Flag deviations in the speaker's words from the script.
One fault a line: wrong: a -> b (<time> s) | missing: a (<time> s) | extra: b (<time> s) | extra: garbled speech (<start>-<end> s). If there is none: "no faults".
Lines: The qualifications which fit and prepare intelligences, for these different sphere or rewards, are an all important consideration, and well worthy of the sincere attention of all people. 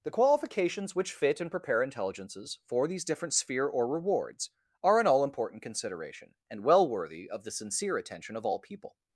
no faults